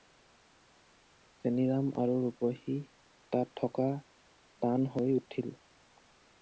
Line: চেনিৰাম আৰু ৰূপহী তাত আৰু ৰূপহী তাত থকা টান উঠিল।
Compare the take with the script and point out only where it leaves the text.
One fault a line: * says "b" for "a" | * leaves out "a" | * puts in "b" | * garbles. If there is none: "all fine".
* leaves out "আৰু ৰূপহী তাত"
* puts in "হৈ"